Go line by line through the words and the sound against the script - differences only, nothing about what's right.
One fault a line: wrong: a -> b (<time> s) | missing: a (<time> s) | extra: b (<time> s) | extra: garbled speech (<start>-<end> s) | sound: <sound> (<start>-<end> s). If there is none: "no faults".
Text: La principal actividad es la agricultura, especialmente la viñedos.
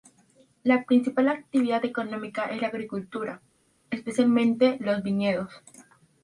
extra: económica (1.9 s)
wrong: la -> los (4.8 s)